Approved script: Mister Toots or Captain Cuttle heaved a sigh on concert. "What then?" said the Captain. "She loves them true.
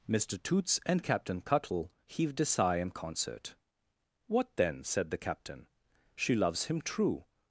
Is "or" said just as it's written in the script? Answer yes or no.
no